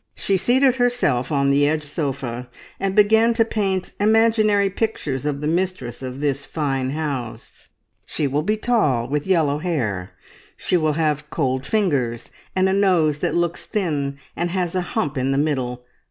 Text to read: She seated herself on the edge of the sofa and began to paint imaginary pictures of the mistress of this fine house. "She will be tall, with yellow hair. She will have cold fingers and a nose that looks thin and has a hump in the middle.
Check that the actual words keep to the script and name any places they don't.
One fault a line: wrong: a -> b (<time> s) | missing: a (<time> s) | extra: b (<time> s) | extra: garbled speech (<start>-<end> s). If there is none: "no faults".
missing: of the (1.9 s)